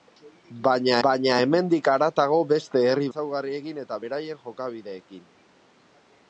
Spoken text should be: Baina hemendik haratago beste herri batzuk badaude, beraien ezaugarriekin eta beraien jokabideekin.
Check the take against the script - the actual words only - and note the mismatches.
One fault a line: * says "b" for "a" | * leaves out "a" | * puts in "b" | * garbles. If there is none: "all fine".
* puts in "baina"
* leaves out "batzuk badaude beraien"